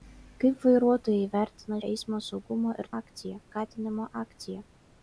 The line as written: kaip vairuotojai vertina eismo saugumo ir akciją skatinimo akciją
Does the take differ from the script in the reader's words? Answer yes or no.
no